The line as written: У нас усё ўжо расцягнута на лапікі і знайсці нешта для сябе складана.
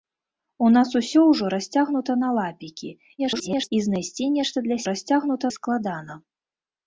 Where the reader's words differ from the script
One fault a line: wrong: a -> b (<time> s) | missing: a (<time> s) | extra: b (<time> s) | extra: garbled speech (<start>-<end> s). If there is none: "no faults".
extra: garbled speech (3.2-3.7 s)
wrong: сябе -> расцягнута (4.9 s)